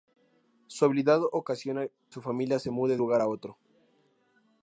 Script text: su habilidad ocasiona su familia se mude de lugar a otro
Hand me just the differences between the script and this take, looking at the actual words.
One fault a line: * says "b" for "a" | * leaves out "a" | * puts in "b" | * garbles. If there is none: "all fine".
all fine